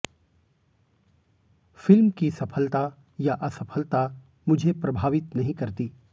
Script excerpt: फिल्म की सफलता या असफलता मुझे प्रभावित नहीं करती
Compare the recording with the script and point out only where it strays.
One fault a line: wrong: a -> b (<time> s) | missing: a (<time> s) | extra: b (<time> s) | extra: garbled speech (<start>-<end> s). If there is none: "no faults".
no faults